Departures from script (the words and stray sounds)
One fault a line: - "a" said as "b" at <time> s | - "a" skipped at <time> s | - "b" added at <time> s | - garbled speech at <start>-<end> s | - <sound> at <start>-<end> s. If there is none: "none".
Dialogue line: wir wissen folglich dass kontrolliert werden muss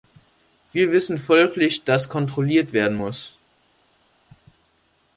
none